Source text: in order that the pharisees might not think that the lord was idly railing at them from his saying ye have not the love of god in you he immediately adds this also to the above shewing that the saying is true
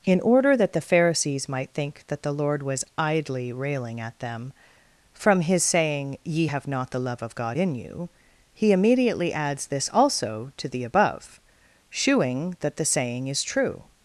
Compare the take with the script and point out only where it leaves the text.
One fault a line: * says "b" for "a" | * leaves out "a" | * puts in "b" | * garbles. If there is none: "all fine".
* leaves out "not"